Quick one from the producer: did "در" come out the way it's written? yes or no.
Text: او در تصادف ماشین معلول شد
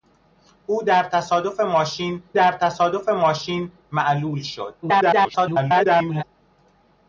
yes